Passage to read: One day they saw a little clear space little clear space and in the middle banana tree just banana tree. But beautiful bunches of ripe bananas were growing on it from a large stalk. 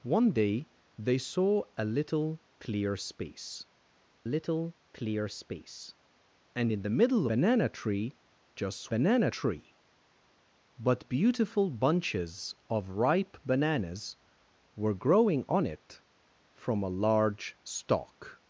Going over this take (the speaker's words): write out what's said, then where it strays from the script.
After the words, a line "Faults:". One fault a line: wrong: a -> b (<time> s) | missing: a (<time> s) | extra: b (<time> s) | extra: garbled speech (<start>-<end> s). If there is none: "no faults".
One day they saw a little clear space little clear space and in the middle banana tree just banana tree. But beautiful bunches of ripe bananas were growing on it from a large stalk.
Faults:
no faults